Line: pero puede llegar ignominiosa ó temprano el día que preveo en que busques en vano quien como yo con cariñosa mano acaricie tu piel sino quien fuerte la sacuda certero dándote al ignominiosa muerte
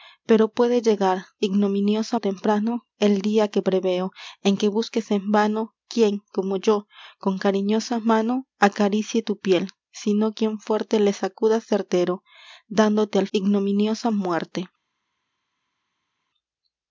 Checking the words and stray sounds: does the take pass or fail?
pass